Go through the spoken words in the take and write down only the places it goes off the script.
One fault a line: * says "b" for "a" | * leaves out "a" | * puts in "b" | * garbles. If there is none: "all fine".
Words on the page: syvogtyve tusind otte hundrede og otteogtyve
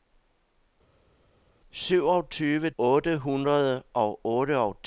* leaves out "tusind"